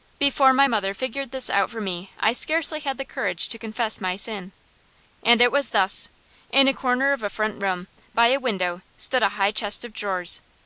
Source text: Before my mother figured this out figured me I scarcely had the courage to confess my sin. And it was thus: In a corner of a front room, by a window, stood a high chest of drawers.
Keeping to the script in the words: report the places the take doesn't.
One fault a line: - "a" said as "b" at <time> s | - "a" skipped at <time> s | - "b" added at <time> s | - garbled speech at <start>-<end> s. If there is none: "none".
- "figured" said as "for" at 1.7 s